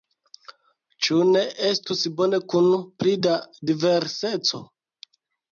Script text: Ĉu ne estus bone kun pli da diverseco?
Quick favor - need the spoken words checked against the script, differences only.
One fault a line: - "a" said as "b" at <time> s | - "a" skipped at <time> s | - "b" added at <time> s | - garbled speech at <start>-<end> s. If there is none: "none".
none